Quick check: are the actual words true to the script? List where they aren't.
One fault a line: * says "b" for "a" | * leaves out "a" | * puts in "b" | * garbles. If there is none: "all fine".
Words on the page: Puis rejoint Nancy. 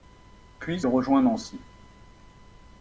all fine